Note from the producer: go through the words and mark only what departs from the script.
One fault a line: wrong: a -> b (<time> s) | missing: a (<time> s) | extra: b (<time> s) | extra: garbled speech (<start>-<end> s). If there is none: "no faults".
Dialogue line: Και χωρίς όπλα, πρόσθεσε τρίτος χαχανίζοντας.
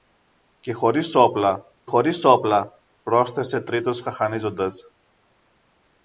extra: χωρίς όπλα (1.8 s)